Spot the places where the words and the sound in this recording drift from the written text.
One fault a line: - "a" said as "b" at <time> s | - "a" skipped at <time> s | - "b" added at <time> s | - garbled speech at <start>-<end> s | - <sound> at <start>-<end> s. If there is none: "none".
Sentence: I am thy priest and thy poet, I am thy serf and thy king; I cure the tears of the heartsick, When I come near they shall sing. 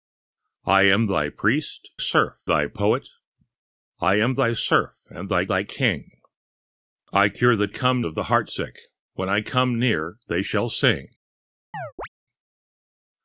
- "and" said as "serf" at 2.0 s
- "thy" added at 5.5 s
- "tears" said as "come" at 7.7 s
- chirp at 11.7-12.1 s